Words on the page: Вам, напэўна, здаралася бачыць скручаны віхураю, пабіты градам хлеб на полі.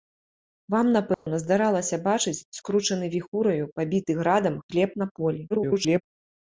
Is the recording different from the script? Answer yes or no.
yes